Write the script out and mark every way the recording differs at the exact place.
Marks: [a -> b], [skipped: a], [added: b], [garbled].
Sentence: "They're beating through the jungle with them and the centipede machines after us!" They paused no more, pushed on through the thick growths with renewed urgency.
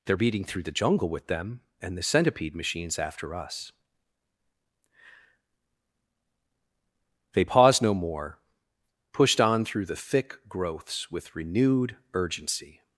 "They're beating through the jungle with them and the centipede machines after us!" They paused no more, pushed on through the thick growths with renewed urgency.